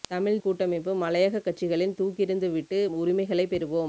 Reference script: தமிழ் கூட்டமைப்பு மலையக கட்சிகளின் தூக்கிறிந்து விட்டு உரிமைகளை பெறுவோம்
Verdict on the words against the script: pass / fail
pass